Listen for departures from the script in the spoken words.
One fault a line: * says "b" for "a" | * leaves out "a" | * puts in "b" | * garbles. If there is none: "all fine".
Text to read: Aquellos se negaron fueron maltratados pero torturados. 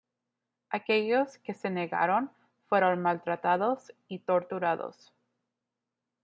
* puts in "que"
* says "y" for "pero"